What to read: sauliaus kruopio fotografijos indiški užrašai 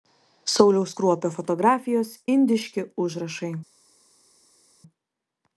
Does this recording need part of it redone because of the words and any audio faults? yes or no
no